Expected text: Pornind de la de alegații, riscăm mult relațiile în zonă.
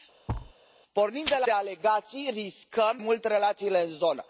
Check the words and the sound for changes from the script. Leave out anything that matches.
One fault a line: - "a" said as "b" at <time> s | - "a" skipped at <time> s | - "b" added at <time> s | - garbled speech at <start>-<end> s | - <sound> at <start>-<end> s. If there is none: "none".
- thud at 0.3-0.5 s